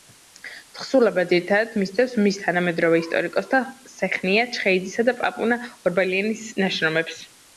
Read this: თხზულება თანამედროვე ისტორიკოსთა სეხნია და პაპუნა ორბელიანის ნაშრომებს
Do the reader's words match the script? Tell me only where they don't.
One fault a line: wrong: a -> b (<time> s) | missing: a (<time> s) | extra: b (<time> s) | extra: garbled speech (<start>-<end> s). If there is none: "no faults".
extra: ძირითადად მისდევს მის (1.3 s)
extra: ჩხეიძისა (4.6 s)